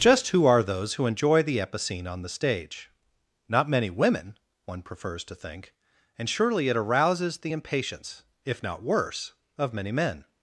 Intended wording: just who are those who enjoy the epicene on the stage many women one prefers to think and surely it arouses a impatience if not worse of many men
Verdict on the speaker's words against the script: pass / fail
fail